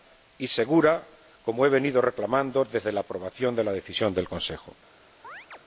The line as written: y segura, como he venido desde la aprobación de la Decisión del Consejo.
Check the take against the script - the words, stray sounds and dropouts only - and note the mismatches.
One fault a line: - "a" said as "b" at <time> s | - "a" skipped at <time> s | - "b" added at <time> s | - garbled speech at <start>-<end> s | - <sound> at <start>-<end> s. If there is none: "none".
- "reclamando" added at 2.0 s
- chirp at 5.2-5.6 s